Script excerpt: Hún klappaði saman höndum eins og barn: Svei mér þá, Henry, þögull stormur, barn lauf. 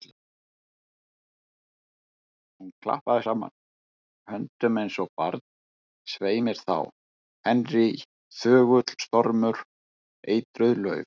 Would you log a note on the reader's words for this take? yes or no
yes